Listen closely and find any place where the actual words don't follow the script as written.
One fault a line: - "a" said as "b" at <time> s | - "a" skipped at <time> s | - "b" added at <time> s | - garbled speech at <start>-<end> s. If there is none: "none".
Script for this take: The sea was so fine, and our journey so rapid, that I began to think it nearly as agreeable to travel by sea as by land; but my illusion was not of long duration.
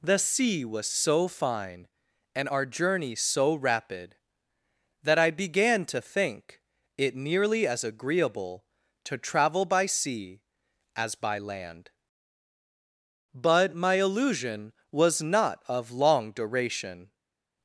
none